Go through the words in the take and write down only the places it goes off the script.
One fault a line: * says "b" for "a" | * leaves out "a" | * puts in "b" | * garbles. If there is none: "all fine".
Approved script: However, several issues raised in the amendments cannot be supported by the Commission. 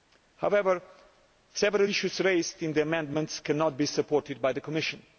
all fine